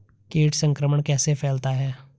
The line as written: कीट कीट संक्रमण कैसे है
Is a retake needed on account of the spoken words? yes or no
yes